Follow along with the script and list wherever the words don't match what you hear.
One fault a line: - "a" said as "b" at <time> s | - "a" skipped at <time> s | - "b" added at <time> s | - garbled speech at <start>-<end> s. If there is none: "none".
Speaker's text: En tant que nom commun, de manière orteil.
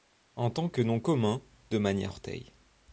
none